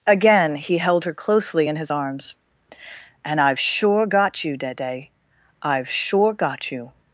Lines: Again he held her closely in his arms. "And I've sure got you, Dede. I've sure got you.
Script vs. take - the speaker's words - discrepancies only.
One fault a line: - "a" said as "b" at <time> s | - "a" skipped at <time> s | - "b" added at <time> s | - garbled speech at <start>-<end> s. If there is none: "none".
none